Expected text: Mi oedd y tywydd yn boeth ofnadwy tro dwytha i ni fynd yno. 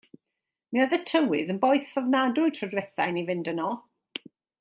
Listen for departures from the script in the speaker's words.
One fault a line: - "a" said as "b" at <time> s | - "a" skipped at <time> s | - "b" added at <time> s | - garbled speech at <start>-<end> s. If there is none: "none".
none